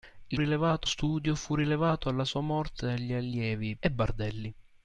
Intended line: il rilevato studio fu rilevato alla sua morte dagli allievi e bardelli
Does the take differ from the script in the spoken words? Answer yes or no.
no